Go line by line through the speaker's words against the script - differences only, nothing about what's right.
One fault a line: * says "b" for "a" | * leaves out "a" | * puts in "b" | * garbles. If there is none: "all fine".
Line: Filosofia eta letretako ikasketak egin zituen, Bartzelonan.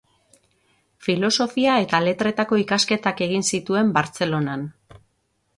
all fine